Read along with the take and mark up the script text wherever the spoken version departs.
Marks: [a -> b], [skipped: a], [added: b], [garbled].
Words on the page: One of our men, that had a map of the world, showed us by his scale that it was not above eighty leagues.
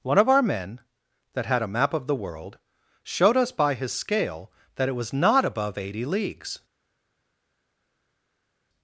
One of our men, that had a map of the world, showed us by his scale that it was not above eighty leagues.